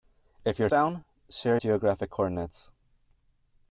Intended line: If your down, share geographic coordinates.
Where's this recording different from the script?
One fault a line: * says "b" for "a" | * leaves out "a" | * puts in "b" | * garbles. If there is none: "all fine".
all fine